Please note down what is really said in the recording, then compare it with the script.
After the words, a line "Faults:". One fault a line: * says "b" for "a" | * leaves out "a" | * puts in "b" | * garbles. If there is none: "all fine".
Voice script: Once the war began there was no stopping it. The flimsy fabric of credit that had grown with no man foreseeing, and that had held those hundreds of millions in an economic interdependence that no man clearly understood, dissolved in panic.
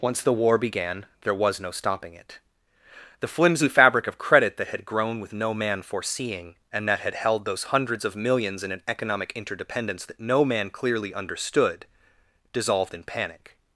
Once the war began there was no stopping it. The flimsy fabric of credit that had grown with no man foreseeing, and that had held those hundreds of millions in an economic interdependence that no man clearly understood, dissolved in panic.
Faults:
all fine